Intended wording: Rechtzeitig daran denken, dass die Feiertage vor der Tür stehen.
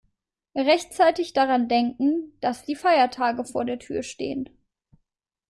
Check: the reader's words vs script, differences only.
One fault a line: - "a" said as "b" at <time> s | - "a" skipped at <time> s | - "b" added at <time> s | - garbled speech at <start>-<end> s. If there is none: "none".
none